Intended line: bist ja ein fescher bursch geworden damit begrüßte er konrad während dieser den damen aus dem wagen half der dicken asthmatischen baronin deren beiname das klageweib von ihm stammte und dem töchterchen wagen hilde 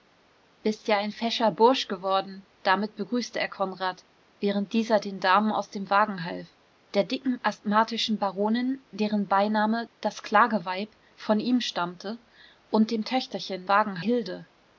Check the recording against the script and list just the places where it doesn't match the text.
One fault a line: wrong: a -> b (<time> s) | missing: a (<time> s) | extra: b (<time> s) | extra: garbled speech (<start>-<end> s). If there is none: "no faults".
no faults